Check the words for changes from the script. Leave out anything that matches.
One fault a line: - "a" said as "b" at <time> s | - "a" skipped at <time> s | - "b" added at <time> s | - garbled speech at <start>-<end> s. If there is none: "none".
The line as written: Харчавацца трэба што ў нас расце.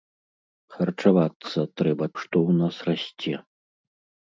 none